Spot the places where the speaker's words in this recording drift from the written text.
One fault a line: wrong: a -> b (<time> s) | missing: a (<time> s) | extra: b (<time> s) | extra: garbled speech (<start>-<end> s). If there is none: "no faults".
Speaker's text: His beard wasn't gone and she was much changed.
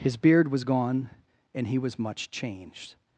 wrong: wasn't -> was (0.5 s)
wrong: she -> he (1.7 s)